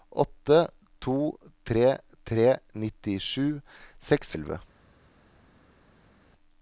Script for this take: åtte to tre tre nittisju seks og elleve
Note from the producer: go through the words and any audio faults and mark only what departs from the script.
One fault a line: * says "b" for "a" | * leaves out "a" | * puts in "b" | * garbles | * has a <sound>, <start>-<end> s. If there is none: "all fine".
all fine